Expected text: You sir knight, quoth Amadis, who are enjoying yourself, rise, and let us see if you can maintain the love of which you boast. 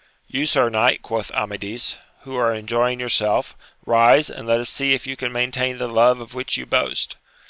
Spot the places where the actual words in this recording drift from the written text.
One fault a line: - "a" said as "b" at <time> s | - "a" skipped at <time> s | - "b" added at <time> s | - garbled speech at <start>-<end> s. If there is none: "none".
none